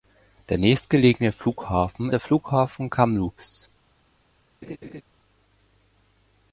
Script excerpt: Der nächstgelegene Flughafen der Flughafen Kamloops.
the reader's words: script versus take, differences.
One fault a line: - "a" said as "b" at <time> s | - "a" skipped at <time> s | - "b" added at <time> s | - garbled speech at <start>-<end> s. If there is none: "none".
none